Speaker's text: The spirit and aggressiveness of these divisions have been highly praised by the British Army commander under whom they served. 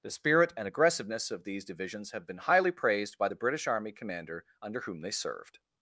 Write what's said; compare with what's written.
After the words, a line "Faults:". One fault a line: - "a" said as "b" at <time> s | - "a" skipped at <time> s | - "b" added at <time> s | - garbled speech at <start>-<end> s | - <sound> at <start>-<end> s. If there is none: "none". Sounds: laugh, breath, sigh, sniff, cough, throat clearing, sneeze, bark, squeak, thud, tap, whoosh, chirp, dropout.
The spirit and aggressiveness of these divisions have been highly praised by the British Army commander under whom they served.
Faults:
none